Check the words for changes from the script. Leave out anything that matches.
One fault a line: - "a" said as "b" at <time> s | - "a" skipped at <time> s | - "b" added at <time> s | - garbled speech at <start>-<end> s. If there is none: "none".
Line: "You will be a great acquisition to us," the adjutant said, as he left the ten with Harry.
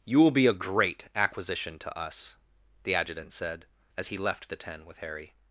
none